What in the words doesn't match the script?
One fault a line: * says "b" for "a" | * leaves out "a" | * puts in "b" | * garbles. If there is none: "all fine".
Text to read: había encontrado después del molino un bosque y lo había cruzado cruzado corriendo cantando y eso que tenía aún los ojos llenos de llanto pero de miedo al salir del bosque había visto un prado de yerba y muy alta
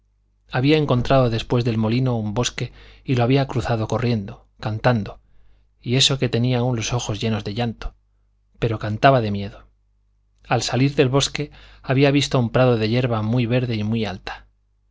* leaves out "cruzado"
* puts in "cantaba"
* puts in "muy verde"